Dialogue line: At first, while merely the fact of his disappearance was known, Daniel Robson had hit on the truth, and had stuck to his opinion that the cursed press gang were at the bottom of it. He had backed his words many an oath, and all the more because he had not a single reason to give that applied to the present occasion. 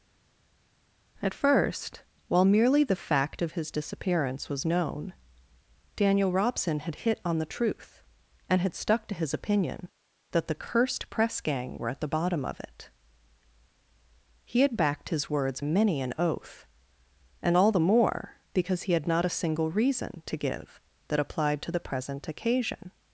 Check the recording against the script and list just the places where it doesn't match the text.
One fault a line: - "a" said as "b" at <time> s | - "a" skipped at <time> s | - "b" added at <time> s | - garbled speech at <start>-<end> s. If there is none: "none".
none